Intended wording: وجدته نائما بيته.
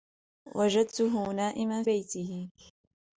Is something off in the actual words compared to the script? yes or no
no